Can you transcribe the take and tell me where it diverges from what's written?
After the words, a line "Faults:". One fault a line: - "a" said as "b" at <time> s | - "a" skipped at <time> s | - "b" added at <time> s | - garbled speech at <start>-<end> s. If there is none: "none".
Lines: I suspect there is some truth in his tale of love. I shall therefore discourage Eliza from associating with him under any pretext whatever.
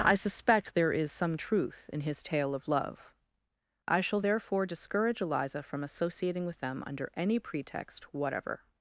I suspect there is some truth in his tale of love. I shall therefore discourage Eliza from associating with them under any pretext whatever.
Faults:
- "him" said as "them" at 6.6 s